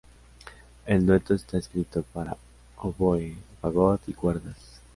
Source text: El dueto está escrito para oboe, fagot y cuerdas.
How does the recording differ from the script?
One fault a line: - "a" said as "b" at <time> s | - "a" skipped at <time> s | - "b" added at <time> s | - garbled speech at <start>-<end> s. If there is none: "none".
none